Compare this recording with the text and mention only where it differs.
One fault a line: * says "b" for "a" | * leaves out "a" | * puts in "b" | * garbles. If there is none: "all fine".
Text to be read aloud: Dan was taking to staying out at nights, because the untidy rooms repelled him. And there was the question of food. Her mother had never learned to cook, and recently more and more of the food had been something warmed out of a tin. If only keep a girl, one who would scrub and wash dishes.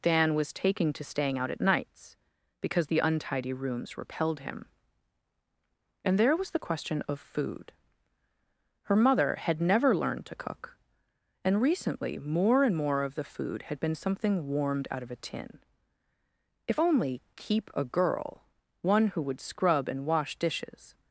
all fine